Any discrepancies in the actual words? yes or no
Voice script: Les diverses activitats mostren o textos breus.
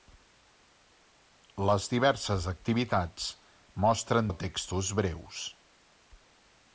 no